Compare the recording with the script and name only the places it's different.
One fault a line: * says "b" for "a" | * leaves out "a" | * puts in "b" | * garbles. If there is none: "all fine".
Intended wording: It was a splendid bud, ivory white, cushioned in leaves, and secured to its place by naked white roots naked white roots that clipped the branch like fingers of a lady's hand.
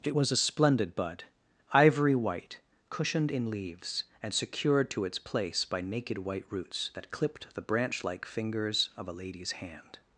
* leaves out "naked white roots"